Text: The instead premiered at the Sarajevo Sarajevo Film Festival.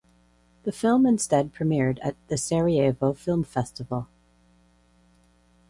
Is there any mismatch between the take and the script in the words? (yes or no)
yes